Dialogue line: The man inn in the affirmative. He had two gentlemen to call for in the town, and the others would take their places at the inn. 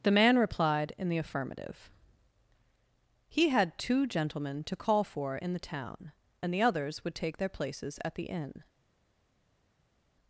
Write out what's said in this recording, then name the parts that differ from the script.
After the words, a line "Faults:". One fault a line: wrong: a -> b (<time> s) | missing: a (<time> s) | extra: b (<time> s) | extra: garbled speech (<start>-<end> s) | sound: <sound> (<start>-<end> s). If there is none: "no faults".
The man replied in the affirmative. He had two gentlemen to call for in the town, and the others would take their places at the inn.
Faults:
wrong: inn -> replied (0.4 s)